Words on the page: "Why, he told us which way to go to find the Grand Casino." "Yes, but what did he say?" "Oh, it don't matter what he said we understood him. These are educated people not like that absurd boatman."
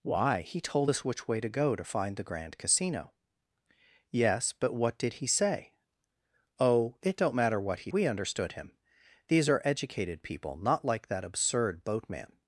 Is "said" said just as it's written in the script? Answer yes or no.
no